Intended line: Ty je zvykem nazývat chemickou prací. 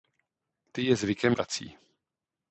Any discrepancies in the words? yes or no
yes